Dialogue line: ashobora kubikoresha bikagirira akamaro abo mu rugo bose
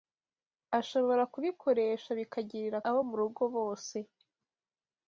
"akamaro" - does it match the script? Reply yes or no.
no